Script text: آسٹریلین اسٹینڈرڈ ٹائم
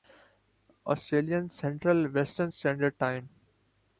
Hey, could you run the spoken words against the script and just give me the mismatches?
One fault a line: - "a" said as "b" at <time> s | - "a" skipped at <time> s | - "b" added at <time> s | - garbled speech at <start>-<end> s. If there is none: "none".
- "سنٹرل ویسٹرن" added at 1.5 s